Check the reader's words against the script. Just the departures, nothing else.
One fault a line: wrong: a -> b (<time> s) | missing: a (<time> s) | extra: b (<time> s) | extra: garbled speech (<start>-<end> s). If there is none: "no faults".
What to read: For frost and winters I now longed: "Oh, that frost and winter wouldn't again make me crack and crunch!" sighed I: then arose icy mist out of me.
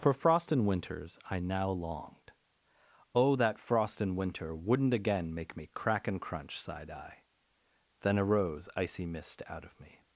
no faults